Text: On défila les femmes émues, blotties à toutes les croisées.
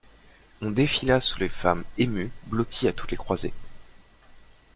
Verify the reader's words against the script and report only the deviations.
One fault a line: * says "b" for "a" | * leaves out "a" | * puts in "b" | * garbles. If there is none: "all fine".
* puts in "sous"